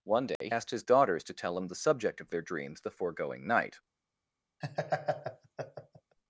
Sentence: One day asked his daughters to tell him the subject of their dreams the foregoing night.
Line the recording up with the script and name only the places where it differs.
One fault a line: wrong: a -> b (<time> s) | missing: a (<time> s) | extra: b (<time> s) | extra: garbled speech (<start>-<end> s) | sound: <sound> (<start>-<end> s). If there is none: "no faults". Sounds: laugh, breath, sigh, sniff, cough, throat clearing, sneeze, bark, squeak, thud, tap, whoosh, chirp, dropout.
sound: dropout (0.4-0.4 s)
sound: laugh (4.6-6.2 s)